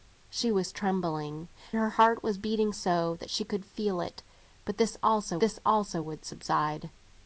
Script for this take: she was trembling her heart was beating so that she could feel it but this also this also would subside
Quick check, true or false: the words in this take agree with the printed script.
true